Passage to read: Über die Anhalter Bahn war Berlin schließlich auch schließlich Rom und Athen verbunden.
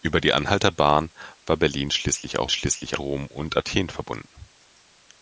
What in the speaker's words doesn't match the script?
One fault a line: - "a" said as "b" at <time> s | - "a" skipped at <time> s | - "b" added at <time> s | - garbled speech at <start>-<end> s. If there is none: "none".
none